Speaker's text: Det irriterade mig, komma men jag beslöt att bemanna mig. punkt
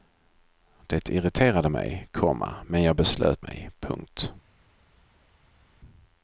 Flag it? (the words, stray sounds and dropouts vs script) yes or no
yes